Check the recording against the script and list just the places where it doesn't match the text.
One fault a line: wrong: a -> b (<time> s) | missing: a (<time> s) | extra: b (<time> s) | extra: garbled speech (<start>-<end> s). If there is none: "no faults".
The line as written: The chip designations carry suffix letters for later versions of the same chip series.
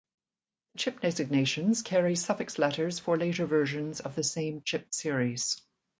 no faults